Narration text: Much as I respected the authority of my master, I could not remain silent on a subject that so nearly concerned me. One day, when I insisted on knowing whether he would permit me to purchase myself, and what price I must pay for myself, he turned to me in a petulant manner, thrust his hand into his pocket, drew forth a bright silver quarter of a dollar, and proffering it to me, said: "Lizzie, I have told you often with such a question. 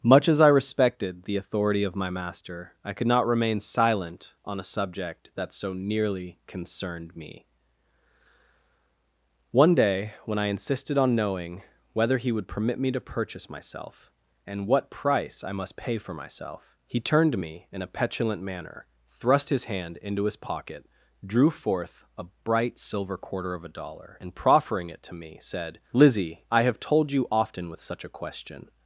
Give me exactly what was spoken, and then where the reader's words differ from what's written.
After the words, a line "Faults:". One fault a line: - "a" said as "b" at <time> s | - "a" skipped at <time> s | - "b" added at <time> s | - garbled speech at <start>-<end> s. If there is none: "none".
Much as I respected the authority of my master, I could not remain silent on a subject that so nearly concerned me. One day, when I insisted on knowing whether he would permit me to purchase myself, and what price I must pay for myself, he turned to me in a petulant manner, thrust his hand into his pocket, drew forth a bright silver quarter of a dollar, and proffering it to me, said: "Lizzie, I have told you often with such a question.
Faults:
none